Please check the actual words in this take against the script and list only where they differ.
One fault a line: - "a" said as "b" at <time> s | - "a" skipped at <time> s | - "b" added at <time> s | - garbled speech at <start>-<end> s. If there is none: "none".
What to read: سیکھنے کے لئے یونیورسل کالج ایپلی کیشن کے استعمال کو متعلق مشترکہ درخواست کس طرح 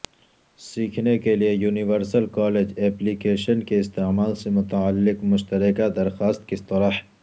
- "کو" said as "سے" at 4.3 s